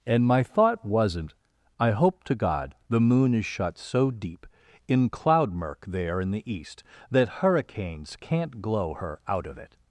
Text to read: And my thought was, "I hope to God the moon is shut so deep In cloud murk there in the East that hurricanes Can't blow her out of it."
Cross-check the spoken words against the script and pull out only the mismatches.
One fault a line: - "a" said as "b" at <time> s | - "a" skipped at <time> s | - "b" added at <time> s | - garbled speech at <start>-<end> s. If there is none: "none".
- "was" said as "wasn't" at 0.8 s
- "blow" said as "glow" at 8.6 s